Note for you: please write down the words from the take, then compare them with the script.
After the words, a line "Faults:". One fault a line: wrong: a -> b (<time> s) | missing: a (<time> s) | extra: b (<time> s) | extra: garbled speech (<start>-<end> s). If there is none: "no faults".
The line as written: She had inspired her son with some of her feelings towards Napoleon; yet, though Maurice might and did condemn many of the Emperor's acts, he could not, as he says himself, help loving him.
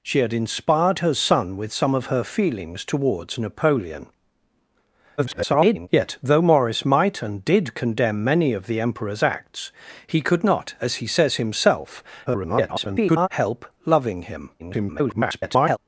She had inspired her son with some of her feelings towards Napoleon; [garbled] yet, though Maurice might and did condemn many of the Emperor's acts, he could not, as he says himself, [garbled] help loving him. [garbled]
Faults:
extra: garbled speech (5.2-5.9 s)
extra: garbled speech (12.3-13.3 s)
extra: garbled speech (14.6-15.8 s)